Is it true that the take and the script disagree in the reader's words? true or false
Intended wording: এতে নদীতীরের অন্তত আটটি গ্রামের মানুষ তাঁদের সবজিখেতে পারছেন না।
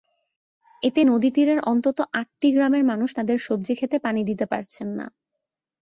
true